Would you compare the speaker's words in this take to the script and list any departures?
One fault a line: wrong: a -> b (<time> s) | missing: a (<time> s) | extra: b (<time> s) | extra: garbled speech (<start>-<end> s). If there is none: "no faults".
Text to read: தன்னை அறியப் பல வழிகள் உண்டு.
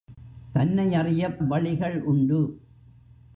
missing: பல (1.4 s)